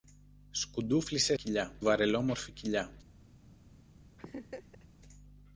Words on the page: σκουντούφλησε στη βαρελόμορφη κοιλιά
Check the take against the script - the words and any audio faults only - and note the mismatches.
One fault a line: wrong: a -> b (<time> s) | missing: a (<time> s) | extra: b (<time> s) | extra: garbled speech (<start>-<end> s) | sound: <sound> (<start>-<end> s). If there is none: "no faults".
wrong: στη -> κοιλιά (1.3 s)
sound: laugh (4.2-4.9 s)